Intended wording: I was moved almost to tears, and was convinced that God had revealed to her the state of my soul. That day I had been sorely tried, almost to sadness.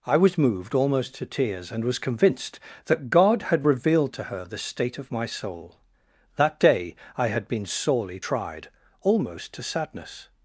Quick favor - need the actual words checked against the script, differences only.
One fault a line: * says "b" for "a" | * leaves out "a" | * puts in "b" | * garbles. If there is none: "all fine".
all fine